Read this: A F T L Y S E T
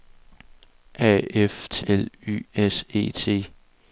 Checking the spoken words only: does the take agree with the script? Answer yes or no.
yes